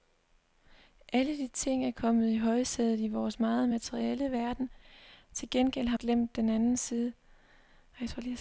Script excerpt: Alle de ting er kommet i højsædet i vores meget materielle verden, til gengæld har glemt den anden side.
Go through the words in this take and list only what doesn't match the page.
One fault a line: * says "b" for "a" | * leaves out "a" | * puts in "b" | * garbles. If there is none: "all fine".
all fine